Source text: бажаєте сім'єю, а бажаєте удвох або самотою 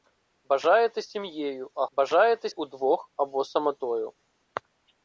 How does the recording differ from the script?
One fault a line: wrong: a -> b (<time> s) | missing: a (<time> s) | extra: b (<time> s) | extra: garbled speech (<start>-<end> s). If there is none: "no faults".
no faults